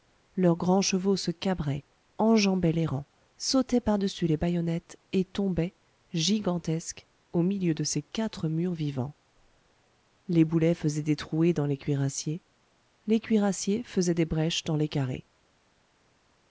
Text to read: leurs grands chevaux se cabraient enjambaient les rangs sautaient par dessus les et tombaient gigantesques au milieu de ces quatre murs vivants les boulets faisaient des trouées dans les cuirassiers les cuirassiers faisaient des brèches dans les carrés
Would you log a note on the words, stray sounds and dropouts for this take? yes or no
yes